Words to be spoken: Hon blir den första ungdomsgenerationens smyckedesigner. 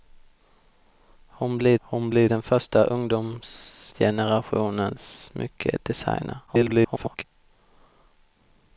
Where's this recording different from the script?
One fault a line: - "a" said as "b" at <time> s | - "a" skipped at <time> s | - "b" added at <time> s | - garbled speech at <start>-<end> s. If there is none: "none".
- "hon blir" added at 1.8 s
- garbled speech at 6.5-7.2 s